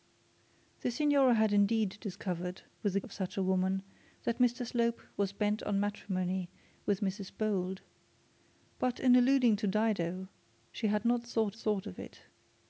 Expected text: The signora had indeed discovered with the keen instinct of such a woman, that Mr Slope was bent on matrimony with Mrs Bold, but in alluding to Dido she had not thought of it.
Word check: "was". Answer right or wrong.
right